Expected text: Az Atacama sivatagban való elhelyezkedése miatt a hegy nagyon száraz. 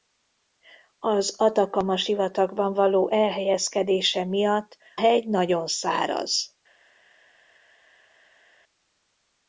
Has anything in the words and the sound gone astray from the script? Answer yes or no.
yes